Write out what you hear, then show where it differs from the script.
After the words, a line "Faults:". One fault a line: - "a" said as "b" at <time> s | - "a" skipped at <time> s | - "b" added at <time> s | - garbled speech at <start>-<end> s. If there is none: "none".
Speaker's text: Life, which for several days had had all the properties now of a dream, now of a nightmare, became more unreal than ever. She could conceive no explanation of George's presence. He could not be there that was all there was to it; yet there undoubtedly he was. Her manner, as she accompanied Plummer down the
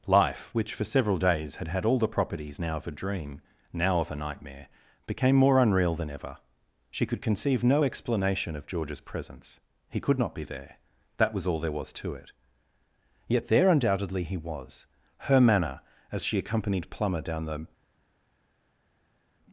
Life, which for several days had had all the properties now of a dream, now of a nightmare, became more unreal than ever. She could conceive no explanation of George's presence. He could not be there that was all there was to it; yet there undoubtedly he was. Her manner, as she accompanied Plummer down the
Faults:
none